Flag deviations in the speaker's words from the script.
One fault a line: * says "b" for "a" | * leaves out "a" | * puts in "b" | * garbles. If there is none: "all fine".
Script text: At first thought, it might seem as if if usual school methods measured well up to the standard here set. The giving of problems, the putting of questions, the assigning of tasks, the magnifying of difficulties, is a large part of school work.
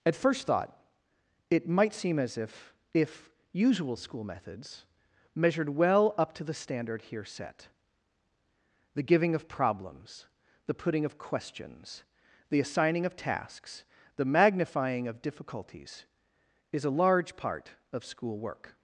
all fine